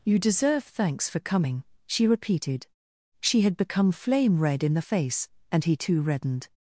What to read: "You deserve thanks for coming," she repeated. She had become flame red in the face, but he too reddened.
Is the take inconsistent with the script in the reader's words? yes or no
yes